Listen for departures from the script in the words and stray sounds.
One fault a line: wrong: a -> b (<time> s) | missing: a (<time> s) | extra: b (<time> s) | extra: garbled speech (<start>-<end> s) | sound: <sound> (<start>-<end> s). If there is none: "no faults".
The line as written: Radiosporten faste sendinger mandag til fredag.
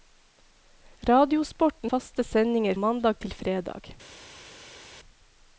no faults